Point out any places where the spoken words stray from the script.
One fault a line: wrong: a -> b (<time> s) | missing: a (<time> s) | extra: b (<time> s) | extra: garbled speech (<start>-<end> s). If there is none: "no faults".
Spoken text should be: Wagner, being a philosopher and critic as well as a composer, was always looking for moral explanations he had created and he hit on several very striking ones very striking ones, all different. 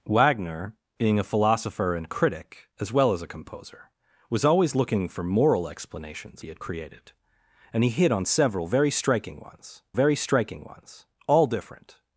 no faults